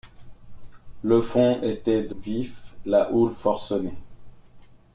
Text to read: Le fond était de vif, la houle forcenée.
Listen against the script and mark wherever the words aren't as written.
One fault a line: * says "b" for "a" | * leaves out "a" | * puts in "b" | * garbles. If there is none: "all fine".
all fine